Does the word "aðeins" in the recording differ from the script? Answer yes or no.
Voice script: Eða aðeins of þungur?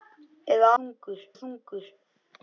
yes